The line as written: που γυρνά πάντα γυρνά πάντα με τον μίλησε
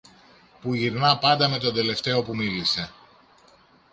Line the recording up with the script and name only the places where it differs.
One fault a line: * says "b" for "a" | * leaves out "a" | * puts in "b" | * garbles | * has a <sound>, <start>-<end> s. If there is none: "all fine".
* says "με τον τελευταίο που" for "γυρνά πάντα με τον"